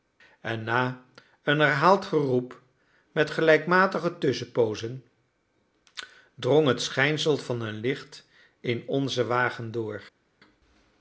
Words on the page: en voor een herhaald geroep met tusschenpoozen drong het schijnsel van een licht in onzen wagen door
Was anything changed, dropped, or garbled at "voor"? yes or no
yes